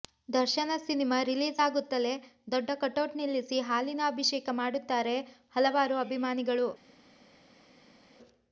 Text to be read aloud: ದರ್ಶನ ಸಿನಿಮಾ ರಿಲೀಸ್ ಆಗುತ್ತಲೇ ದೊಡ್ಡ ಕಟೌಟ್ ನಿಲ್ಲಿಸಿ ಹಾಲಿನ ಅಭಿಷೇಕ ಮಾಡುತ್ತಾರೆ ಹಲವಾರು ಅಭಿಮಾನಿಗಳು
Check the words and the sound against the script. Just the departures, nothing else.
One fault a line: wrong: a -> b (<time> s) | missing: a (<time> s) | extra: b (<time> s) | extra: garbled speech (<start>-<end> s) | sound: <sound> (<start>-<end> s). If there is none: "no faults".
no faults